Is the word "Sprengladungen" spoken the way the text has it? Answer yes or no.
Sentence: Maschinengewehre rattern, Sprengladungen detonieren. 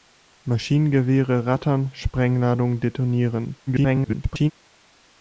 yes